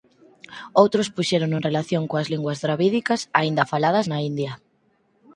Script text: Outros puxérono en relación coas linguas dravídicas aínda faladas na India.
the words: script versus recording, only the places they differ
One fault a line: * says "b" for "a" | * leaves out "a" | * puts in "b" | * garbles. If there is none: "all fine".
all fine